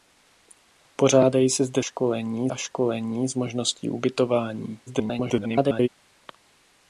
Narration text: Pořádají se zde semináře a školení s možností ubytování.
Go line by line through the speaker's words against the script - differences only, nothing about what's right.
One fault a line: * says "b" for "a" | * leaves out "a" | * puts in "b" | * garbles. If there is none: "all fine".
* says "školení" for "semináře"
* garbles